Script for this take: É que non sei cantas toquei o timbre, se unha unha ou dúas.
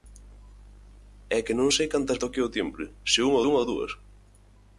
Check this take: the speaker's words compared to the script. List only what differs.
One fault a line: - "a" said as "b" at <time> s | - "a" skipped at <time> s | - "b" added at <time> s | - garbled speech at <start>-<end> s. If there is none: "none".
none